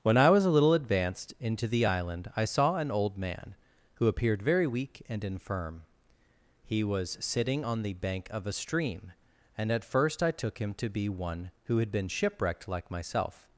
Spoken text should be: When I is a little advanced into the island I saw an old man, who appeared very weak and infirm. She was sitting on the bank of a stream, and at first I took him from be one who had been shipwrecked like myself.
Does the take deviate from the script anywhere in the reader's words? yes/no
yes